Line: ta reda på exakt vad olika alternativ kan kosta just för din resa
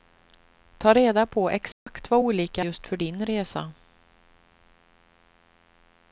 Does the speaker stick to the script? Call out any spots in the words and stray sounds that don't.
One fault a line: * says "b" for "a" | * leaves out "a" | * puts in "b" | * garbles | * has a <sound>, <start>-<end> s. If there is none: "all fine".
* has a dropout, 1.7-1.9 s
* leaves out "alternativ kan kosta"